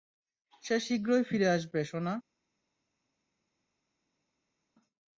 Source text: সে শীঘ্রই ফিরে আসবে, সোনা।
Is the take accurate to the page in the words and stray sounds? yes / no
yes